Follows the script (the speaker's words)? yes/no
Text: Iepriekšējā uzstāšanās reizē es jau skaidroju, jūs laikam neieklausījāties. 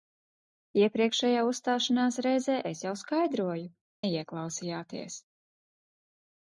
no